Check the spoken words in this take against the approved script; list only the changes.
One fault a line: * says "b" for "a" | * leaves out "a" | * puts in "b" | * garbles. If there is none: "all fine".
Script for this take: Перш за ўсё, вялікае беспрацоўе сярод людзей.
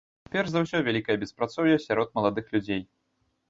* puts in "маладых"